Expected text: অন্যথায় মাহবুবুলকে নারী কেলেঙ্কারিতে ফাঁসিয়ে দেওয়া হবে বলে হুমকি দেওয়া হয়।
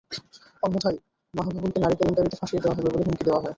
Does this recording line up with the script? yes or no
yes